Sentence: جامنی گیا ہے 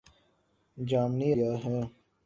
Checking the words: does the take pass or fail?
pass